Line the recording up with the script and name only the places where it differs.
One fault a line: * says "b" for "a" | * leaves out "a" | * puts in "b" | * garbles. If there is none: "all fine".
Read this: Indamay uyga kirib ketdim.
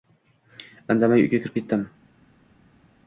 all fine